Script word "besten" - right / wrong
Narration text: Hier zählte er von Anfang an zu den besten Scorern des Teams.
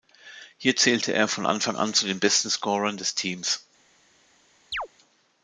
right